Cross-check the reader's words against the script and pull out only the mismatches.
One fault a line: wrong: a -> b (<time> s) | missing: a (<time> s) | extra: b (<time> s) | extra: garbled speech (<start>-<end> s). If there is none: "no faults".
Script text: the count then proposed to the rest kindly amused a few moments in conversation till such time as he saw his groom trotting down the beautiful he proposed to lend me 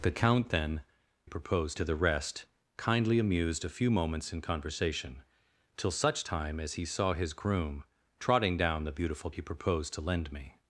no faults